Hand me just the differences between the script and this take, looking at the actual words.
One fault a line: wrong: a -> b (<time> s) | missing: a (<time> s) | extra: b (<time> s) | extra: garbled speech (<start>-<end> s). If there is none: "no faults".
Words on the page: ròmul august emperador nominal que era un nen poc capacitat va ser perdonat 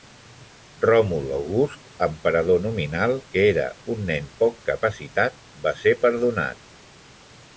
no faults